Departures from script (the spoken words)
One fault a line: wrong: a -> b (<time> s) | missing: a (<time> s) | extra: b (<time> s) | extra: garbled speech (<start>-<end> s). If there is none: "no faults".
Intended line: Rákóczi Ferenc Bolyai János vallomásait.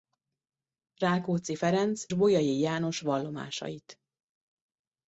no faults